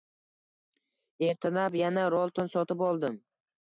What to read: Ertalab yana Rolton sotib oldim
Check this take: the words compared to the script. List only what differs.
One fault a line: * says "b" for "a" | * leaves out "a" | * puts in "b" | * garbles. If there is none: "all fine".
all fine